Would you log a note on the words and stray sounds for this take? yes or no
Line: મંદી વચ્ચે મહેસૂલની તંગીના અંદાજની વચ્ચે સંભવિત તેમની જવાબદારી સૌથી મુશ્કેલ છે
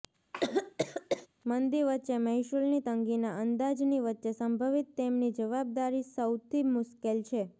yes